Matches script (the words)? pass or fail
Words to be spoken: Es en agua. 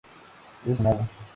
pass